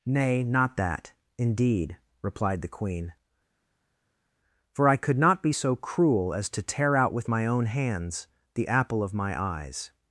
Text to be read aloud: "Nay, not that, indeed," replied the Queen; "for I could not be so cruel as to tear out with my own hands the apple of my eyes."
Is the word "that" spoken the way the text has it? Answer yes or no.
yes